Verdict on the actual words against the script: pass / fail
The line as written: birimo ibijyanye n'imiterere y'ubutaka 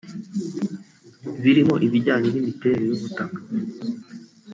pass